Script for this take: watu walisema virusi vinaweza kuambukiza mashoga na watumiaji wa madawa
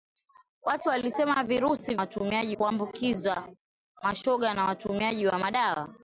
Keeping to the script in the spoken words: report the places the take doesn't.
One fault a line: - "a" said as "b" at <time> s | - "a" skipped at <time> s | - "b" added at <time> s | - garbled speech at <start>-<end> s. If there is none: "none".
- "vinaweza" said as "watumiaji" at 2.0 s